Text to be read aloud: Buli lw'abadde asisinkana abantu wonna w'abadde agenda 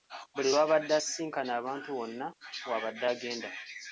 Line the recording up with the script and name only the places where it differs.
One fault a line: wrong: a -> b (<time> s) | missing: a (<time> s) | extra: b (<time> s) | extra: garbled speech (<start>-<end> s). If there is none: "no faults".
no faults